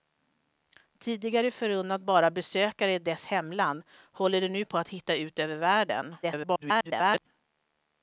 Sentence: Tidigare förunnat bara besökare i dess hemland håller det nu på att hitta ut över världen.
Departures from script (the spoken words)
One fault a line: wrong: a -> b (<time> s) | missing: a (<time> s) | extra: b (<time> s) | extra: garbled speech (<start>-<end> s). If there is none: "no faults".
extra: garbled speech (6.2-7.3 s)